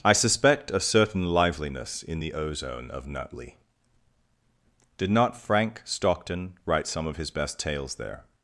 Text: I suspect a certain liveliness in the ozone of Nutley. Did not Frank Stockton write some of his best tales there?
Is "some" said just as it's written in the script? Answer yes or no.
yes